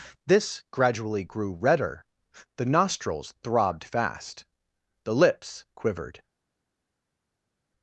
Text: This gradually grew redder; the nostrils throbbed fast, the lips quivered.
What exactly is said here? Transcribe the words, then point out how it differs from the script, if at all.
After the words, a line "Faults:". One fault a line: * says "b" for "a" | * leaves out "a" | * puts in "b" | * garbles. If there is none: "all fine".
This gradually grew redder; the nostrils throbbed fast, the lips quivered.
Faults:
all fine